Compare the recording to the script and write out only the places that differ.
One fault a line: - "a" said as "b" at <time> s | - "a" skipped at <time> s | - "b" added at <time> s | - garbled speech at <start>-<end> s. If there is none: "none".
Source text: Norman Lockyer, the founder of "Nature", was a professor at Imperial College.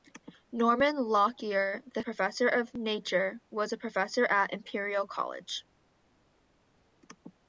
- "founder" said as "professor" at 2.0 s